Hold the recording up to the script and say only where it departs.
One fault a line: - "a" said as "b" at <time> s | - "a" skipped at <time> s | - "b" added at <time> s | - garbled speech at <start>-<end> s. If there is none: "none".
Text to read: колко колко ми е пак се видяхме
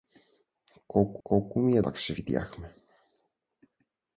none